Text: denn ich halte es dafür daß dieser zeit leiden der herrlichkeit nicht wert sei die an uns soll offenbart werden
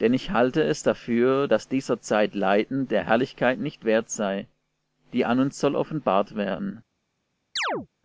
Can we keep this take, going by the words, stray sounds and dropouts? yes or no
no